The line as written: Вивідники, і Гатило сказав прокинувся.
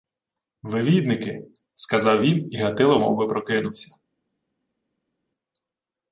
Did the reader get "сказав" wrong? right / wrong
wrong